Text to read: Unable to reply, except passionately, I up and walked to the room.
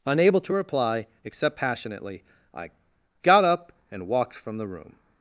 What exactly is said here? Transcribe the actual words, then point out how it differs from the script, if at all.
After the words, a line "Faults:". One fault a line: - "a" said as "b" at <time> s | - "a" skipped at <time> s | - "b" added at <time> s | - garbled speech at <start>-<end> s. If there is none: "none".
Unable to reply, except passionately, I got up and walked from the room.
Faults:
- "got" added at 3.2 s
- "to" said as "from" at 4.3 s